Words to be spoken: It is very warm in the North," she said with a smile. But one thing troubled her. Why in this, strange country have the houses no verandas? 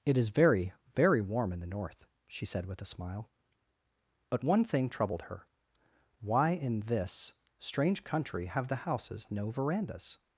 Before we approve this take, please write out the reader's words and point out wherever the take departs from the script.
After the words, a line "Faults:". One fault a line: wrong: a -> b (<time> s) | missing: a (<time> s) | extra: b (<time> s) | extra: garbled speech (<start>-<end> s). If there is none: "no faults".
It is very very warm in the North," she said with a smile. But one thing troubled her. Why in this, strange country have the houses no verandas?
Faults:
extra: very (0.9 s)